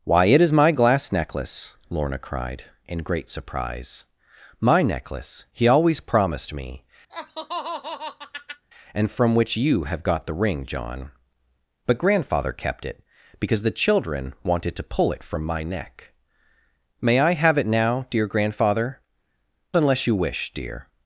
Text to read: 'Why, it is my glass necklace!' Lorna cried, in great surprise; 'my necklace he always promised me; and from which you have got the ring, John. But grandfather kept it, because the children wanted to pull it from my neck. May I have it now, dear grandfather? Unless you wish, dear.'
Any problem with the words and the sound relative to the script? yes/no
yes